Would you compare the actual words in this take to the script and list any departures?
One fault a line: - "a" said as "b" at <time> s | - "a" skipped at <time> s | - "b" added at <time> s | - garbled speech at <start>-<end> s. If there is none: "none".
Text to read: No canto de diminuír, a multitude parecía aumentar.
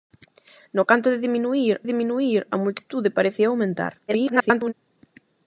- "diminuír" added at 1.8 s
- garbled speech at 4.1-4.7 s